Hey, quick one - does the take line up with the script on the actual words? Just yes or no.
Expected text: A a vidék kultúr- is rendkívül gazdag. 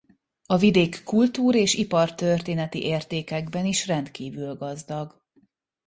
no